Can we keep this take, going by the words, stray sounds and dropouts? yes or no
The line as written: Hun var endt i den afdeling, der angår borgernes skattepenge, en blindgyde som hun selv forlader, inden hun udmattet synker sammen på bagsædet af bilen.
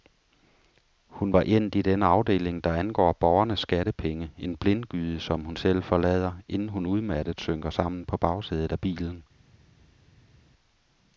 yes